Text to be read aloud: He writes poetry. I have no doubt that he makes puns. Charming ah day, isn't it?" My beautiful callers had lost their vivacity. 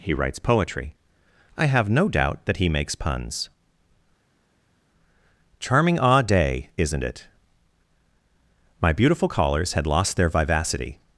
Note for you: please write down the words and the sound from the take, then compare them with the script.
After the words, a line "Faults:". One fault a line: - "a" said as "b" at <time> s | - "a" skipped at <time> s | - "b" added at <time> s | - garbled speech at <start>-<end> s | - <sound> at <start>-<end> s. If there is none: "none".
He writes poetry. I have no doubt that he makes puns. Charming ah day, isn't it?" My beautiful callers had lost their vivacity.
Faults:
none